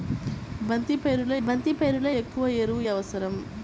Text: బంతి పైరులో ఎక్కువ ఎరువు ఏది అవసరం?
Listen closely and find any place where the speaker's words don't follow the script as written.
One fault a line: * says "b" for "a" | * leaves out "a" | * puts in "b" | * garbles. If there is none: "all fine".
* puts in "బంతి పైరులో"
* leaves out "ఏది"